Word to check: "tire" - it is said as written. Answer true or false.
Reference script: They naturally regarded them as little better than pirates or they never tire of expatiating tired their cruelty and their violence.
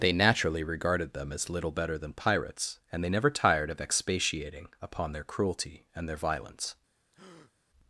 false